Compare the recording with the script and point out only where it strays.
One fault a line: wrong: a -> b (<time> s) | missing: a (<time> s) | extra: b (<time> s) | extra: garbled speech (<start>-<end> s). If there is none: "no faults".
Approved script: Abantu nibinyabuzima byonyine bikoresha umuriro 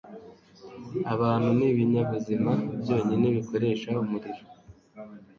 no faults